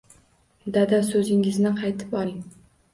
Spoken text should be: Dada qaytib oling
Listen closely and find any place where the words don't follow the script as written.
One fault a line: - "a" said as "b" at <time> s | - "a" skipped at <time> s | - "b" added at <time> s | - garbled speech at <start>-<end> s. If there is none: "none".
- "so‘zingizni" added at 1.1 s